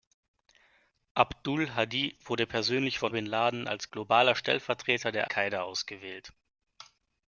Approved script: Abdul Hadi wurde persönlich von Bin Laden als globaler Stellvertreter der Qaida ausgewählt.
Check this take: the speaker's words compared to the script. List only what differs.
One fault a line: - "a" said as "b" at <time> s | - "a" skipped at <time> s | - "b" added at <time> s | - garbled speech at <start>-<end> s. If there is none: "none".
none